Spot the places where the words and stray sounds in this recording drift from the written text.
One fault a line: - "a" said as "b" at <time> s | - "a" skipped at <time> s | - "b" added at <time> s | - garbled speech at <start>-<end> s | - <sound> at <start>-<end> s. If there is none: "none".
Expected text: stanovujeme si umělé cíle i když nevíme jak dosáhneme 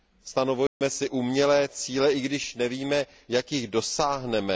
- dropout at 0.7-0.8 s
- "jich" added at 3.5 s